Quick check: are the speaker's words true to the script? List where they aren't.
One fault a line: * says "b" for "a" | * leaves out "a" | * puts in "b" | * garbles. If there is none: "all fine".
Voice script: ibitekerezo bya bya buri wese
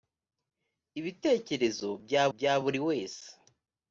all fine